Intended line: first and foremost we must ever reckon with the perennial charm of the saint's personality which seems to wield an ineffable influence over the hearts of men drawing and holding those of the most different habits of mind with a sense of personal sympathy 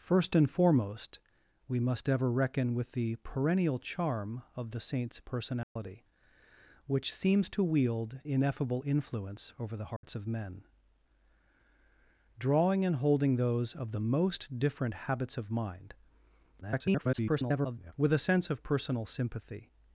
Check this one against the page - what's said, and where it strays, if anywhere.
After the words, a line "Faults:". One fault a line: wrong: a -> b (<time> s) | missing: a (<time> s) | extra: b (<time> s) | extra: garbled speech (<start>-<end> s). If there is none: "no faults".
first and foremost we must ever reckon with the perennial charm of the saint's personality which seems to wield ineffable influence over the hearts of men drawing and holding those of the most different habits of mind [garbled] with a sense of personal sympathy
Faults:
missing: an (8.2 s)
extra: garbled speech (16.6-17.9 s)